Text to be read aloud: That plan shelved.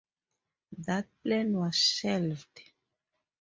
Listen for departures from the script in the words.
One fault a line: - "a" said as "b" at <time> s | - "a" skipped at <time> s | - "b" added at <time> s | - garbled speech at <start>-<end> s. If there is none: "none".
- "was" added at 1.6 s